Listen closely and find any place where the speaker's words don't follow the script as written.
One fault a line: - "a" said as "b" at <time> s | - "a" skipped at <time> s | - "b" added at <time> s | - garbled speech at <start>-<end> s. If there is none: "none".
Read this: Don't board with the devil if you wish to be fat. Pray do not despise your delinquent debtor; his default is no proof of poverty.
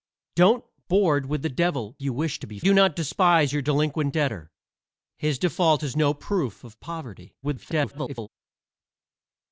- "if" skipped at 1.9 s
- "fat Pray" skipped at 2.6 s
- garbled speech at 7.4-8.3 s